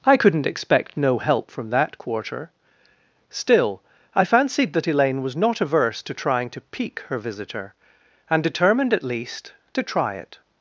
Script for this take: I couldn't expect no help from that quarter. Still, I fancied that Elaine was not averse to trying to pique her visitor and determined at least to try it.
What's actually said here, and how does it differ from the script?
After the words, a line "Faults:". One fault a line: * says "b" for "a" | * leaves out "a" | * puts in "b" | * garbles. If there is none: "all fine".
I couldn't expect no help from that quarter. Still, I fancied that Elaine was not averse to trying to pique her visitor and determined at least to try it.
Faults:
all fine